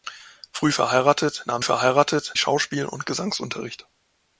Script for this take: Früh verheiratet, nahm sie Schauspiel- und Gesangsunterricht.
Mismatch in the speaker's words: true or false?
true